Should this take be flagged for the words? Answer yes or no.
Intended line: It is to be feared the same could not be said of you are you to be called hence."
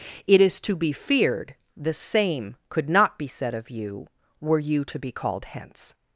yes